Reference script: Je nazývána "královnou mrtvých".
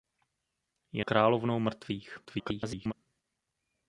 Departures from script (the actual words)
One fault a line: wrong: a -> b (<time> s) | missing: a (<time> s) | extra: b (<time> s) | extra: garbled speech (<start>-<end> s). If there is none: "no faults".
missing: nazývána (1.1 s)
extra: garbled speech (2.2-2.9 s)